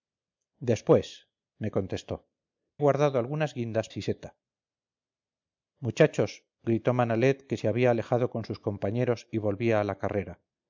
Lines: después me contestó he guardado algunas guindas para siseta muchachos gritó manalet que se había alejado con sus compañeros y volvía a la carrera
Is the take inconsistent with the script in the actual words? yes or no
yes